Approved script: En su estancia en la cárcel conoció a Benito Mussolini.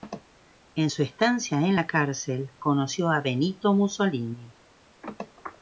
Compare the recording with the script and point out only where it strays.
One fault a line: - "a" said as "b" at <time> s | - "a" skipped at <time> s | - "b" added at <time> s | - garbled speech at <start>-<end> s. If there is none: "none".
none